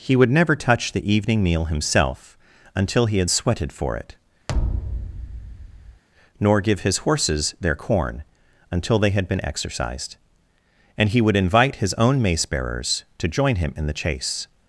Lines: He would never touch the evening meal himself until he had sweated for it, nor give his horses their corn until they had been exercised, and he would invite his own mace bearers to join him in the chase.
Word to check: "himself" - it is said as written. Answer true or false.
true